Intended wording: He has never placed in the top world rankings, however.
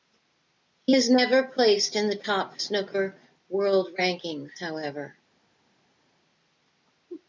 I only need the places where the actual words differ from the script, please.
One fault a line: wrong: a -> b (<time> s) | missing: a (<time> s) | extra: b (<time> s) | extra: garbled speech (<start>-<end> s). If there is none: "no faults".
extra: snooker (2.6 s)